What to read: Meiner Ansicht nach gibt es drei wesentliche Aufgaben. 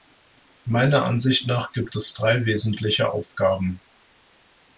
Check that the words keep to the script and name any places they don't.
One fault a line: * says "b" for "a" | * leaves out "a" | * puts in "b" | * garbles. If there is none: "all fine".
all fine